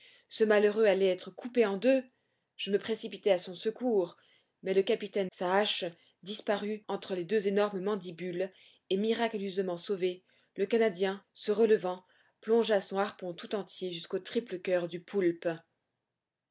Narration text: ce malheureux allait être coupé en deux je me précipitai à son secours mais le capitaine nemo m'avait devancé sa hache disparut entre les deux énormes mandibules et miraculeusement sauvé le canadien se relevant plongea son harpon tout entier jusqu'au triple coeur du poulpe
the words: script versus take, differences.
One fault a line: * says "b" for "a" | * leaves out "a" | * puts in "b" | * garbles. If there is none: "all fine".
* leaves out "nemo m'avait devancé"